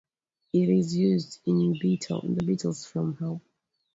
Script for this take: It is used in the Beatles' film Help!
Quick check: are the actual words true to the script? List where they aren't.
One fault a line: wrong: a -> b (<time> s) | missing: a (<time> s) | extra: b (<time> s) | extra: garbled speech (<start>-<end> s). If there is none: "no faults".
no faults